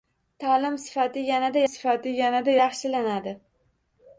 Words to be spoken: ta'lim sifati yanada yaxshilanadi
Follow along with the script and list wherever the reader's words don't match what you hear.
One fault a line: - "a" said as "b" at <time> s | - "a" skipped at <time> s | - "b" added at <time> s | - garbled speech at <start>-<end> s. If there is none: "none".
- "sifati yanada" added at 1.7 s